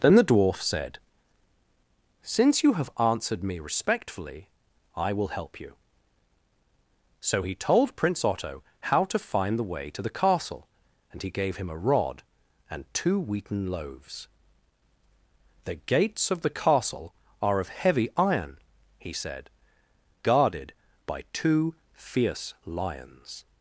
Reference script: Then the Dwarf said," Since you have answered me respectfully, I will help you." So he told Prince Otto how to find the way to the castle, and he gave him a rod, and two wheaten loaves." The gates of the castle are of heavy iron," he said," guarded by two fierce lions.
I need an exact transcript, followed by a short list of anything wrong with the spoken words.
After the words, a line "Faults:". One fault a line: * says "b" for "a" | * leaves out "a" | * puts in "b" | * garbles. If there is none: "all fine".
Then the Dwarf said," Since you have answered me respectfully, I will help you." So he told Prince Otto how to find the way to the castle, and he gave him a rod, and two wheaten loaves." The gates of the castle are of heavy iron," he said," guarded by two fierce lions.
Faults:
all fine